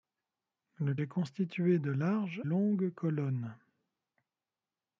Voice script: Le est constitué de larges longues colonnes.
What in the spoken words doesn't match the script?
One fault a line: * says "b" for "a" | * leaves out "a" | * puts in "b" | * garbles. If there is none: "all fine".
all fine